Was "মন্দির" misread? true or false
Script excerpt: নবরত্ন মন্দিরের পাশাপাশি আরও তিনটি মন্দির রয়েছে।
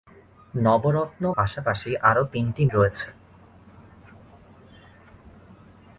true